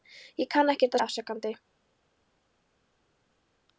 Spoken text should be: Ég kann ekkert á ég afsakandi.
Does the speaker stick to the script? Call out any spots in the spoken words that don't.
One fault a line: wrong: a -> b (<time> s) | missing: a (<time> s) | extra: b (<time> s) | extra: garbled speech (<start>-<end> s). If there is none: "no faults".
no faults